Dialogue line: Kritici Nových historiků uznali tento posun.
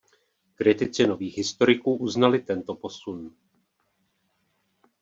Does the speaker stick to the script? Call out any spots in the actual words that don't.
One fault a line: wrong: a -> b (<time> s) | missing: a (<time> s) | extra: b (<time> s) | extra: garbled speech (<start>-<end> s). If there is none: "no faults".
no faults